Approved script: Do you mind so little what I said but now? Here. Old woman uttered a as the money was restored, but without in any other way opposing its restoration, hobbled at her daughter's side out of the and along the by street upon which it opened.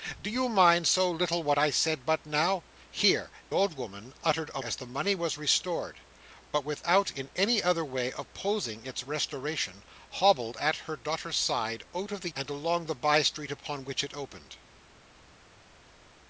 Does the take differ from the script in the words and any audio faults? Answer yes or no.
no